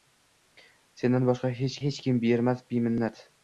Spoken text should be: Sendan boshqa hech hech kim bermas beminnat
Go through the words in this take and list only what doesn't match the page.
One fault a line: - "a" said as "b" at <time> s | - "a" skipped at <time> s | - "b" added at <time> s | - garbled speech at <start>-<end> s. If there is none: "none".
none